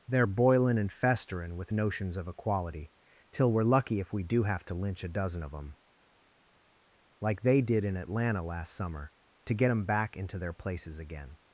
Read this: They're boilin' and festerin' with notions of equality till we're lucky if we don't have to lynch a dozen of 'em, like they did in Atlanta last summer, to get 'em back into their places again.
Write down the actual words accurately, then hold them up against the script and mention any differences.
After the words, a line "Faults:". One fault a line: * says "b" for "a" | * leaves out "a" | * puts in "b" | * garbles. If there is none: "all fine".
They're boilin' and festerin' with notions of equality till we're lucky if we do have to lynch a dozen of 'em, like they did in Atlanta last summer, to get 'em back into their places again.
Faults:
* says "do" for "don't"